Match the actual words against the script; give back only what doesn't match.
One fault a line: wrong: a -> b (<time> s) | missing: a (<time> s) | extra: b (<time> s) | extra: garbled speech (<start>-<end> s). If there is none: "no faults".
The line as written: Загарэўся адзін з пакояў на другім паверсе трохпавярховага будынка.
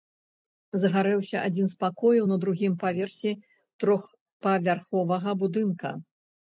no faults